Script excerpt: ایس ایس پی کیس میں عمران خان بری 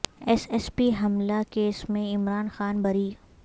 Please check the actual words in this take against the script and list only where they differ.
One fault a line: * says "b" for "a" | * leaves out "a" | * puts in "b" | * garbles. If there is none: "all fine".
* puts in "حملہ"